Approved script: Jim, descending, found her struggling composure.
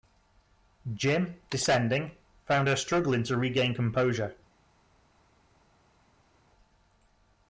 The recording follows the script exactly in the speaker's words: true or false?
false